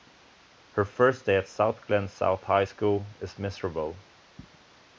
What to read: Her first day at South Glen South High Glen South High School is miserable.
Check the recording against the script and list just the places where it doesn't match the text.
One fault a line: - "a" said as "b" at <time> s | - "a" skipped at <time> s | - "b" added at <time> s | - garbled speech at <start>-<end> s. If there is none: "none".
- "Glen South High" skipped at 2.6 s